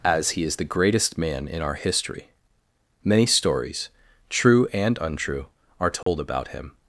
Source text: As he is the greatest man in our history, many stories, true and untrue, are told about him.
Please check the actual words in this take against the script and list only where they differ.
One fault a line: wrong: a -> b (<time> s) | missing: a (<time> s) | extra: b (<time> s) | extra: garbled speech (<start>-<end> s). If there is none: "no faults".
no faults